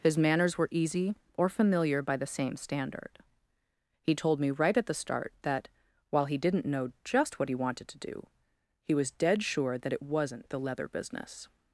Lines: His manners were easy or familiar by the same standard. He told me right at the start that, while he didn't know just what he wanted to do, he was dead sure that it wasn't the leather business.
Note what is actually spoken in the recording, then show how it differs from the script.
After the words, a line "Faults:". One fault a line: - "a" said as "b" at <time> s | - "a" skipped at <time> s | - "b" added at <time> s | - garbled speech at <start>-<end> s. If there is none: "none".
His manners were easy or familiar by the same standard. He told me right at the start that, while he didn't know just what he wanted to do, he was dead sure that it wasn't the leather business.
Faults:
none